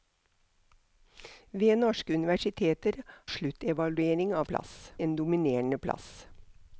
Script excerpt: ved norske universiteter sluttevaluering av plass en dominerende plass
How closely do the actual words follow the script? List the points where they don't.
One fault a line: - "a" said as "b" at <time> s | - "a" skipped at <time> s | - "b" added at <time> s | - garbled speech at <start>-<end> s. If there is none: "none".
none